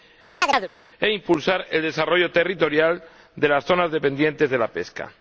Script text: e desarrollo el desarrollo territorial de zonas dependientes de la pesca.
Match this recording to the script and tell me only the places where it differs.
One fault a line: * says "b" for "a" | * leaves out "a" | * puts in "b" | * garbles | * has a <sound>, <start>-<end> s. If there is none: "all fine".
* has a chirp, 0.4-0.7 s
* says "impulsar" for "desarrollo"
* puts in "las"